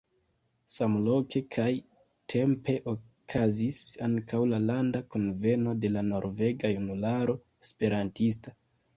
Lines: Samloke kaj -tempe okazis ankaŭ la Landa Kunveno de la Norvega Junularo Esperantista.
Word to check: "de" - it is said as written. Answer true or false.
true